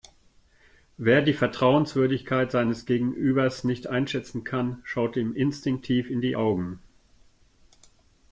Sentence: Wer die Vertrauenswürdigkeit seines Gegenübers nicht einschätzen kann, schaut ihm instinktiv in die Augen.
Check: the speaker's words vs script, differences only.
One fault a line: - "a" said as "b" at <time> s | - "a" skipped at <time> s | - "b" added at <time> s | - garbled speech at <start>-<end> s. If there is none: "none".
none